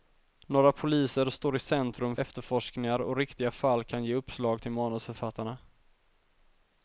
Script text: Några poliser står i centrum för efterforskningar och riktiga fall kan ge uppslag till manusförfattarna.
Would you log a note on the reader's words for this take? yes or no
yes